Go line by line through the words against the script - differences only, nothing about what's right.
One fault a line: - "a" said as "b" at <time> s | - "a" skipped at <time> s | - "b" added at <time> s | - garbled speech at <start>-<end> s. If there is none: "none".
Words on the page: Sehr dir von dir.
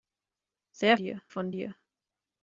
none